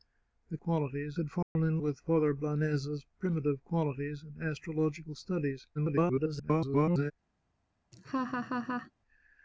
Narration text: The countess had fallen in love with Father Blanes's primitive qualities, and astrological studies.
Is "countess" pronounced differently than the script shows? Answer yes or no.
yes